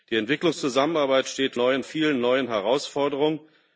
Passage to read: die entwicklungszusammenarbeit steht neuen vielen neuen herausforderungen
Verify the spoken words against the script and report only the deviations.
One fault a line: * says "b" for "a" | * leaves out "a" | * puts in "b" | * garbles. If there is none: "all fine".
all fine